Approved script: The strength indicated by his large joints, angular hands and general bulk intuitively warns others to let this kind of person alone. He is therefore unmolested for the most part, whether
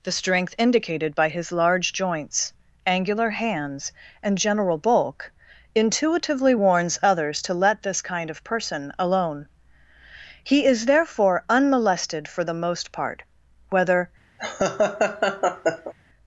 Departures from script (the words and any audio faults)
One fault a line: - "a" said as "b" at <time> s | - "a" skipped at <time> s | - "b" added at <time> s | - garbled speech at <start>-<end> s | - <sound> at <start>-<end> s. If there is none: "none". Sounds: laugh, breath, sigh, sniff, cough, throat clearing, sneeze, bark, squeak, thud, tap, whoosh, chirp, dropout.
- laugh at 14.4-15.9 s